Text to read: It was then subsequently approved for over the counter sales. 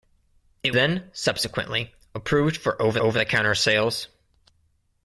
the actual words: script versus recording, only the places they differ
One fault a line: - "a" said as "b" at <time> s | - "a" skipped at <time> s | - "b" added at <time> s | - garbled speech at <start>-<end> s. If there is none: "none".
- "was" skipped at 0.7 s
- "over" added at 3.0 s